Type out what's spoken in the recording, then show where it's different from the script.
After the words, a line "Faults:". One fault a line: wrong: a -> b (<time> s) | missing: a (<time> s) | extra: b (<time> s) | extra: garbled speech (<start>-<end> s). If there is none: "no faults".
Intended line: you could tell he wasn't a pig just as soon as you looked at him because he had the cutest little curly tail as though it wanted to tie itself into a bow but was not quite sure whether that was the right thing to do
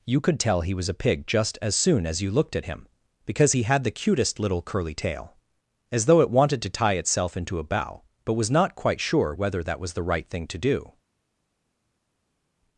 you could tell he was a pig just as soon as you looked at him because he had the cutest little curly tail as though it wanted to tie itself into a bow but was not quite sure whether that was the right thing to do
Faults:
wrong: wasn't -> was (0.7 s)